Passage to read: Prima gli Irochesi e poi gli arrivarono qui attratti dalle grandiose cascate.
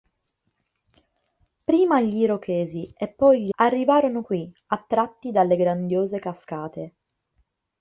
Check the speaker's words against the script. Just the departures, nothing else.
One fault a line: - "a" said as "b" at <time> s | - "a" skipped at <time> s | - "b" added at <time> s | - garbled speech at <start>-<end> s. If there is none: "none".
none